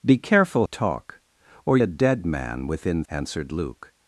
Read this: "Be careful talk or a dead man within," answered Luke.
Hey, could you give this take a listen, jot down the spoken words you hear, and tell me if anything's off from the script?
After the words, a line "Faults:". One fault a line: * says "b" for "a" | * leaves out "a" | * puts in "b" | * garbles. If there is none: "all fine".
"Be careful talk or a dead man within," answered Luke.
Faults:
all fine